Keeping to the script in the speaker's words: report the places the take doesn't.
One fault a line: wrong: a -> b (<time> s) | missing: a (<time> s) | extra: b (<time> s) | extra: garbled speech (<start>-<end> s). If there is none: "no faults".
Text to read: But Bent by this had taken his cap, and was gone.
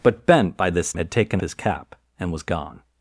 no faults